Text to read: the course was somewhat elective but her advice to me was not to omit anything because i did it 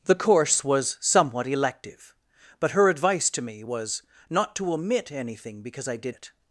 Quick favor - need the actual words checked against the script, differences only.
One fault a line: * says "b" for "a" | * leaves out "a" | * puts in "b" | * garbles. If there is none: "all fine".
all fine